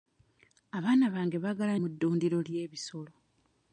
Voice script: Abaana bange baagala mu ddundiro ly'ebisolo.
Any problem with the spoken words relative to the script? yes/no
no